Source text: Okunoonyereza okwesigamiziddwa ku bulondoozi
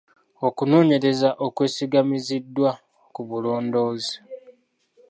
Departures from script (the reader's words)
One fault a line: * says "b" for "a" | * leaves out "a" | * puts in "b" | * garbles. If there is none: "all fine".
all fine